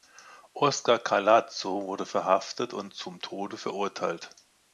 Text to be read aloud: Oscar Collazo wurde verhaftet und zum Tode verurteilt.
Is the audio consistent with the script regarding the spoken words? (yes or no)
yes